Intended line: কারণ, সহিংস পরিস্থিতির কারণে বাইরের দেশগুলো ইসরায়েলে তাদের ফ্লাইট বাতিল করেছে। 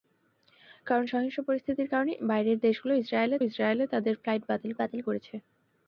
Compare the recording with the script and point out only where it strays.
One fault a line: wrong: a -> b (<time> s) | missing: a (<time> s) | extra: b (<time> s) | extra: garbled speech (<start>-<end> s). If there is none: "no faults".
extra: ইসরায়েলে (3.4 s)
extra: বাতিল (4.8 s)